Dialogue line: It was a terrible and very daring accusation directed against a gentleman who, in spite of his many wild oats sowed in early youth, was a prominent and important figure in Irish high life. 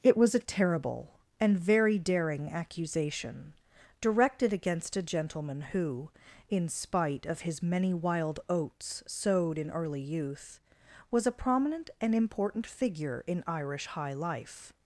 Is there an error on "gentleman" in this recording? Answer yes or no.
no